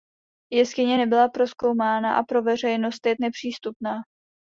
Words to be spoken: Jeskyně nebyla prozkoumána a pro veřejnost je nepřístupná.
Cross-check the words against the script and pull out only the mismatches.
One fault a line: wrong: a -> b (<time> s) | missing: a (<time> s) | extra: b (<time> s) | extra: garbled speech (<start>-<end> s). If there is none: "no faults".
no faults